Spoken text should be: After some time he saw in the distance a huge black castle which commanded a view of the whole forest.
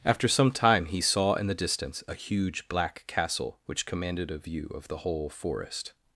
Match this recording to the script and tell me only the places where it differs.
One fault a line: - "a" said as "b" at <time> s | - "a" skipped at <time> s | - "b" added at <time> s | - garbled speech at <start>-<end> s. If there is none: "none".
none